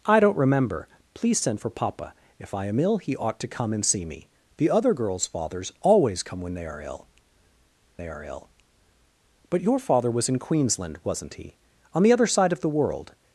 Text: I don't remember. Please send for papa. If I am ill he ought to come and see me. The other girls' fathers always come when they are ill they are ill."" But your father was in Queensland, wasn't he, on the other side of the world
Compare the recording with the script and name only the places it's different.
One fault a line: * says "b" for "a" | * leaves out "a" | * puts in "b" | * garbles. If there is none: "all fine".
all fine